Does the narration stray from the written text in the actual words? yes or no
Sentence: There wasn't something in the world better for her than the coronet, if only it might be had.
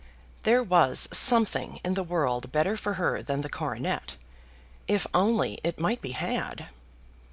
yes